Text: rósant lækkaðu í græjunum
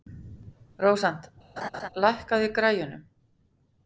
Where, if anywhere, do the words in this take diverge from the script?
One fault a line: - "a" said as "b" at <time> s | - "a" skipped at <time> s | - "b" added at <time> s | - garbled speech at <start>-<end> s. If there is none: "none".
none